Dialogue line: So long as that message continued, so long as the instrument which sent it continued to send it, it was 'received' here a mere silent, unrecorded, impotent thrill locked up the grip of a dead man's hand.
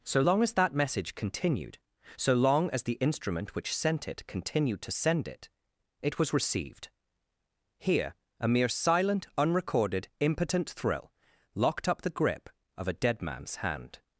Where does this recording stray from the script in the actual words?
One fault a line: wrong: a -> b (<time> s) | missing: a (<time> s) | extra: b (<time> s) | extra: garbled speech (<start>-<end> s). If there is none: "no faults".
no faults